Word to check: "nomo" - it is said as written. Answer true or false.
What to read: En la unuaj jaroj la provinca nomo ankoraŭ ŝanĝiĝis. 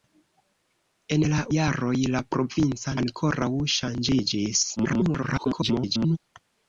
false